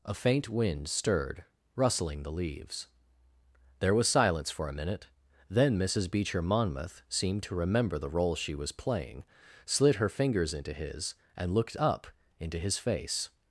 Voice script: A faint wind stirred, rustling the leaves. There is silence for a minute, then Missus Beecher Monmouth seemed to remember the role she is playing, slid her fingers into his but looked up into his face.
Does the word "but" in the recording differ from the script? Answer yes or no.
yes